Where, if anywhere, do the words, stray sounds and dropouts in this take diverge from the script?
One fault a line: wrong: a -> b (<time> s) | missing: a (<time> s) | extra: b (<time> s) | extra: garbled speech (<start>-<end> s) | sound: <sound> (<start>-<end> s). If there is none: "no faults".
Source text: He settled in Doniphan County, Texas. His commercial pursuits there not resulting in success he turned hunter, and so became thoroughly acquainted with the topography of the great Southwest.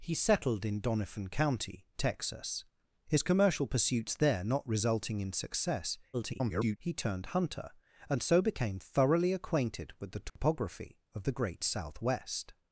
extra: garbled speech (6.1-6.8 s)
sound: dropout (10.3-10.4 s)